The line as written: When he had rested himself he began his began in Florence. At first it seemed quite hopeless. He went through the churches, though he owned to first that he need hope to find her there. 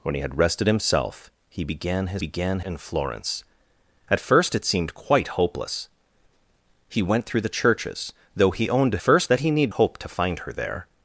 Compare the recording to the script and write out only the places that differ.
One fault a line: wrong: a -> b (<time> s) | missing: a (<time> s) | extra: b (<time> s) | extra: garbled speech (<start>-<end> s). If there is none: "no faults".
no faults